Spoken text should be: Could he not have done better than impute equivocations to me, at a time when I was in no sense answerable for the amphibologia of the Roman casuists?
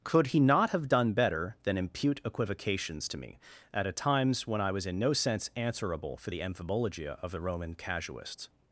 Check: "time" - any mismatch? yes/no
yes